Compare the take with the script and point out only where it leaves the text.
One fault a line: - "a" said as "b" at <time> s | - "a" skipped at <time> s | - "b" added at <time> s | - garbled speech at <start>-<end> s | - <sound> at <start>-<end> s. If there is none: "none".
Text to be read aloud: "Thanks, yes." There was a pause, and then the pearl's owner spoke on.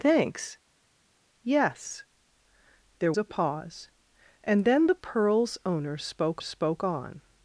- "was" skipped at 3.1 s
- "spoke" added at 6.4 s